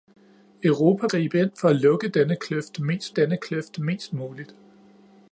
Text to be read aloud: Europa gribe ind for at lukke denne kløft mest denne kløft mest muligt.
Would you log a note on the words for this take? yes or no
no